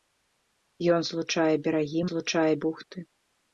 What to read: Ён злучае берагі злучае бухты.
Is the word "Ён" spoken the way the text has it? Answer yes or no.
yes